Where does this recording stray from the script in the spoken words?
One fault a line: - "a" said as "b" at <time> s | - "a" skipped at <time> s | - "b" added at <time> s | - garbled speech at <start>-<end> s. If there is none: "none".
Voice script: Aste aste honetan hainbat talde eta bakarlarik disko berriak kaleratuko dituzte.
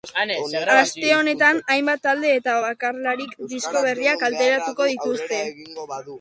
- "aste" skipped at 1.1 s